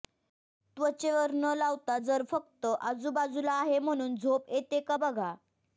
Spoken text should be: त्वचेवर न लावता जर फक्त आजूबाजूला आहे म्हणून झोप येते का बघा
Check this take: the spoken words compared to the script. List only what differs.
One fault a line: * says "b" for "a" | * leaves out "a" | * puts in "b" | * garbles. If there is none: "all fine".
all fine